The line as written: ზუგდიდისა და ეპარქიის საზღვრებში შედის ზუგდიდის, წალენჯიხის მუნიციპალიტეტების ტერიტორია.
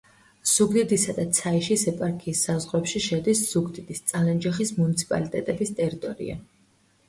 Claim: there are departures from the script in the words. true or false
true